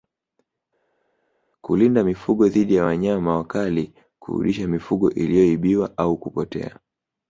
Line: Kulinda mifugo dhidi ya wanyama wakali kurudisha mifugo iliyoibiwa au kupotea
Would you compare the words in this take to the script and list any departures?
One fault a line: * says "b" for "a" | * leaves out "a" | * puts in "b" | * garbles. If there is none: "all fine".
all fine